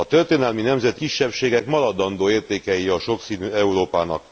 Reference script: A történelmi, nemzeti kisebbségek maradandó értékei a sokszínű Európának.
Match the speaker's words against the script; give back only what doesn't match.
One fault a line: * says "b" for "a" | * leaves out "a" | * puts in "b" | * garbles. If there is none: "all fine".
all fine